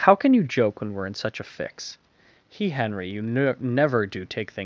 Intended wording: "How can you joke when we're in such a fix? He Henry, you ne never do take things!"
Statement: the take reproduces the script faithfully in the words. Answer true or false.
true